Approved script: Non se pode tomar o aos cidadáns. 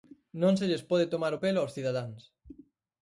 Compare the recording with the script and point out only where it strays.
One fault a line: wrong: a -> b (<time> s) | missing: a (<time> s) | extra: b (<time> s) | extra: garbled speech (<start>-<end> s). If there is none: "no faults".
extra: lles (0.7 s)
extra: pelo (1.4 s)